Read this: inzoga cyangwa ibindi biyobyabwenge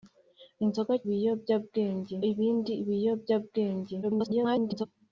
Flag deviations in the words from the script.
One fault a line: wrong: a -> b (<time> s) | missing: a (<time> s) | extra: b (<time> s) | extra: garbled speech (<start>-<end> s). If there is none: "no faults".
wrong: cyangwa -> biyobyabwenge (1.1 s)
extra: garbled speech (4.0-4.9 s)